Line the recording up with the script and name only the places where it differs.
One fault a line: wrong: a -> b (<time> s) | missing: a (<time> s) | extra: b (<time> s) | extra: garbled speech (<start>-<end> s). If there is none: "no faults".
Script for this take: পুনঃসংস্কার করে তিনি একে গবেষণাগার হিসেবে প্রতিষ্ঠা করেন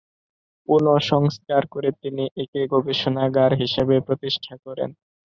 no faults